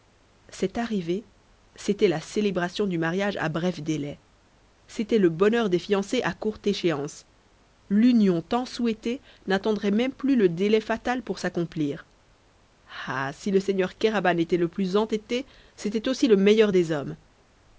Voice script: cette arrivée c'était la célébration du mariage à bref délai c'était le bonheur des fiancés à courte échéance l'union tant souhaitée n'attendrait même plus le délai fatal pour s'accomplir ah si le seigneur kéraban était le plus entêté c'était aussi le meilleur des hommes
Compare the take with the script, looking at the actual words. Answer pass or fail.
pass